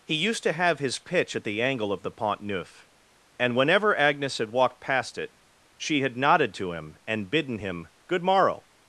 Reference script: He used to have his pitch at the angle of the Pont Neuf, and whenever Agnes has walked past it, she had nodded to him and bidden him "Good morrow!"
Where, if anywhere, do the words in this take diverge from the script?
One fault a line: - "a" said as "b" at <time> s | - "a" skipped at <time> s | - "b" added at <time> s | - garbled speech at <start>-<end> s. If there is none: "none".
- "has" said as "had" at 4.4 s